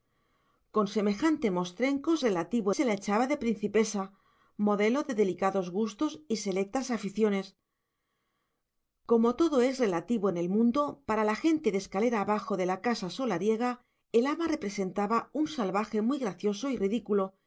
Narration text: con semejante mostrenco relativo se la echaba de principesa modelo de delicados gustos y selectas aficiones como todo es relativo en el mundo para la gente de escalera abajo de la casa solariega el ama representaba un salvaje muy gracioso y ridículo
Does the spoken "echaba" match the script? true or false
true